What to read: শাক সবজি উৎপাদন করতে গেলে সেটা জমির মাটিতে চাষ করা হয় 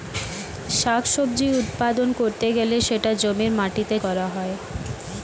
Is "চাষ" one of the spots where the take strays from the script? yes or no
yes